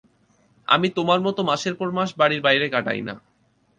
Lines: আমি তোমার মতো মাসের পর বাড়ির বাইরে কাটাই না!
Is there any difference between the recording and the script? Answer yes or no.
yes